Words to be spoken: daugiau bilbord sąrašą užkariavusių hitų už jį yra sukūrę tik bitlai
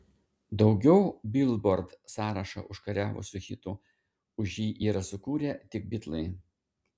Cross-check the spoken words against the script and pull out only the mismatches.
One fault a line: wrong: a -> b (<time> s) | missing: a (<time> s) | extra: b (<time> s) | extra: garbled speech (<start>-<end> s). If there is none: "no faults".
no faults